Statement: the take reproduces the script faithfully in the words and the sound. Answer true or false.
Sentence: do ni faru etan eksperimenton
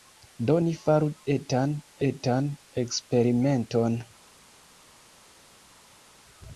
false